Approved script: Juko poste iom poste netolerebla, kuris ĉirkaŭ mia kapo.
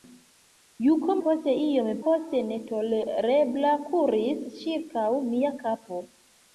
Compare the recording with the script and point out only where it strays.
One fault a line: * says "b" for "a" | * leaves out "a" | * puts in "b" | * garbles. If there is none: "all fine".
all fine